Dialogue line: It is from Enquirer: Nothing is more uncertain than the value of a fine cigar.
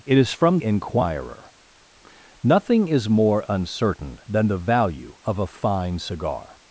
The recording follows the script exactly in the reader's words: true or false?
true